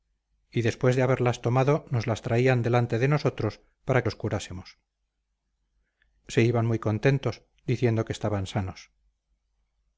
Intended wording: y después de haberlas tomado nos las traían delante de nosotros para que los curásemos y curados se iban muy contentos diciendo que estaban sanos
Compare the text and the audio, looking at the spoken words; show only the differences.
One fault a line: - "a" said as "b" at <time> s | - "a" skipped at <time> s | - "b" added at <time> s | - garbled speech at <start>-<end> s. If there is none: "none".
- "que" skipped at 4.0 s
- "y curados" skipped at 4.8 s